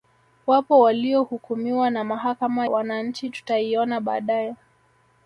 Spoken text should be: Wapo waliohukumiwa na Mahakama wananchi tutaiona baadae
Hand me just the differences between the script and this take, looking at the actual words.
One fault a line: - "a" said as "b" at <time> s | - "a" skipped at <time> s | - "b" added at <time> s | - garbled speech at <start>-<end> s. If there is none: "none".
none